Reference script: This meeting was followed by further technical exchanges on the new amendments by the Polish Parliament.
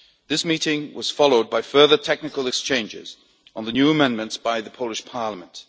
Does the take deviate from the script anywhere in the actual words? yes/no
no